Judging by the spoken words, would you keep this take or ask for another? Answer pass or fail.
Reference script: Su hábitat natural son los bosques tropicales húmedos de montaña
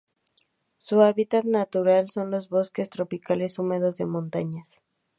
pass